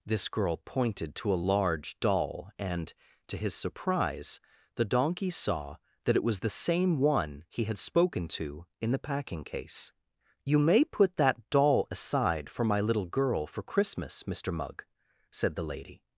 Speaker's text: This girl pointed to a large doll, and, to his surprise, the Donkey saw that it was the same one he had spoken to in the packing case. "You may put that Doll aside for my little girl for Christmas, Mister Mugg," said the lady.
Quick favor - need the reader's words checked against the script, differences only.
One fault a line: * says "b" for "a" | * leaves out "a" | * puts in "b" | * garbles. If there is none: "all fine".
all fine